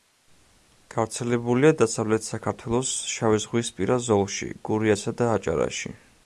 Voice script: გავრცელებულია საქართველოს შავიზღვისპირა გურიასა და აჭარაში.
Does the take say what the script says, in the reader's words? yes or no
no